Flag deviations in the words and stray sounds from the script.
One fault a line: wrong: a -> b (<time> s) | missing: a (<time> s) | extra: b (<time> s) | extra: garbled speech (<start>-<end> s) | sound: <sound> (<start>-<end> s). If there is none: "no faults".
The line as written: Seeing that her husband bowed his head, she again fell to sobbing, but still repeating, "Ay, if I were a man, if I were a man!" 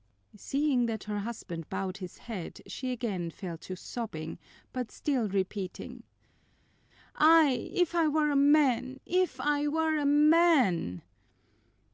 no faults